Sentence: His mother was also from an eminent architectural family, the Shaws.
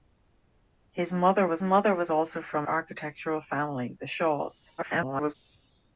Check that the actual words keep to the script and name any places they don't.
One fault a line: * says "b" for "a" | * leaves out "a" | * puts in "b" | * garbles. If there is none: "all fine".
* puts in "mother was"
* leaves out "an eminent"
* garbles